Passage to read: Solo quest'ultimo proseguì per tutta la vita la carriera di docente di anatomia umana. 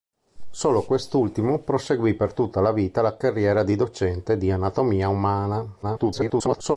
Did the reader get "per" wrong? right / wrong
right